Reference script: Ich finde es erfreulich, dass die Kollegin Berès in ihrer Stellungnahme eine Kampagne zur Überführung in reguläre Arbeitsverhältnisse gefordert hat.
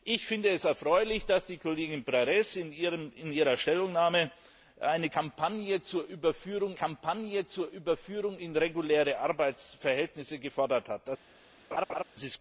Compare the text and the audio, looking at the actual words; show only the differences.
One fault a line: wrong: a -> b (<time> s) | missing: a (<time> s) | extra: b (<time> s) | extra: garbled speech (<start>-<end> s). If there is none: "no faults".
extra: Kampagne zur Überführung (6.7 s)